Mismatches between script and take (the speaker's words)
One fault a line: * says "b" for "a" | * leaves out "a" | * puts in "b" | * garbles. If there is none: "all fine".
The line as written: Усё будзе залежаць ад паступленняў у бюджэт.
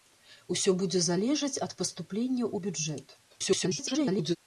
* garbles